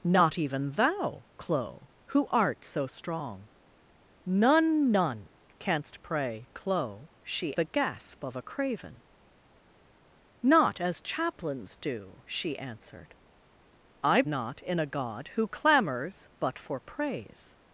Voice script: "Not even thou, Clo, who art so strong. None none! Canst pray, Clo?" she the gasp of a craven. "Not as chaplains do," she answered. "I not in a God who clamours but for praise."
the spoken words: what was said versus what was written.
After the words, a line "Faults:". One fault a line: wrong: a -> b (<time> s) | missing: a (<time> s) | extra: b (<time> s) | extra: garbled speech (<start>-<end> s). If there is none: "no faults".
"Not even thou, Clo, who art so strong. None none! Canst pray, Clo?" she the gasp of a craven. "Not as chaplains do," she answered. "I not in a God who clamours but for praise."
Faults:
no faults